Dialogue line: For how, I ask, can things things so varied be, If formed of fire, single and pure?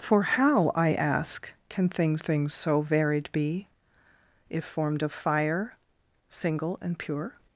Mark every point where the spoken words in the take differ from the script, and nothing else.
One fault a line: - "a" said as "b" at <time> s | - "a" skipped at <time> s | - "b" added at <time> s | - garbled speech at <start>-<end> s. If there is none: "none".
none